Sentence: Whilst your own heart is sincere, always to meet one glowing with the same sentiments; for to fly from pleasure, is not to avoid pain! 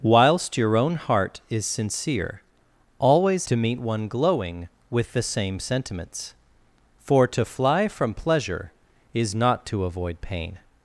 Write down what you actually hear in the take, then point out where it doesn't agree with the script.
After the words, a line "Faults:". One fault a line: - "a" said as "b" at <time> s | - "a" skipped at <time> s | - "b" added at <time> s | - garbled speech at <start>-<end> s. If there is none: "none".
Whilst your own heart is sincere, always to meet one glowing with the same sentiments; for to fly from pleasure, is not to avoid pain!
Faults:
none